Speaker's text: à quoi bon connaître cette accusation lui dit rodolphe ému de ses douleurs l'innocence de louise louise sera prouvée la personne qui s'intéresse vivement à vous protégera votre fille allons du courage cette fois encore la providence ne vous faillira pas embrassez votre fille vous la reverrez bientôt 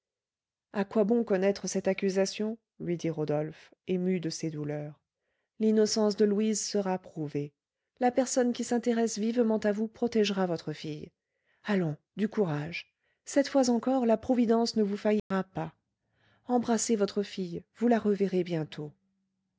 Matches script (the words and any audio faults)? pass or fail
fail